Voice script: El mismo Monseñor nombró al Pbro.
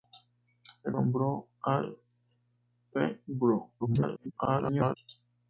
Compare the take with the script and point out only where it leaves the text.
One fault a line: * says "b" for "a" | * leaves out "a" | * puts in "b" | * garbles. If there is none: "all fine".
* leaves out "mismo Monseñor"
* garbles